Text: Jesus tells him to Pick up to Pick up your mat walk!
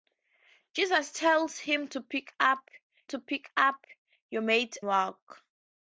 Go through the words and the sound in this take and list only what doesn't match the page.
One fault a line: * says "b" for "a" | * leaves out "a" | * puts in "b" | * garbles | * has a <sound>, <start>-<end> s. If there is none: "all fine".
all fine